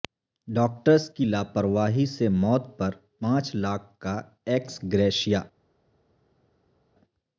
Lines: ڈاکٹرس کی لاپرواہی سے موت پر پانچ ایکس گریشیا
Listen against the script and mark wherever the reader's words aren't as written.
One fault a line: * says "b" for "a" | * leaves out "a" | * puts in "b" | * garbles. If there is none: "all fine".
* puts in "لاکھ کا"